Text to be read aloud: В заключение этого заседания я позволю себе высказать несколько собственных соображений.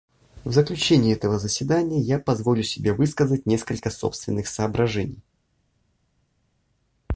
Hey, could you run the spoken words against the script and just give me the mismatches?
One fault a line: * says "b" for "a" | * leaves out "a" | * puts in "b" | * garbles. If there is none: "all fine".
all fine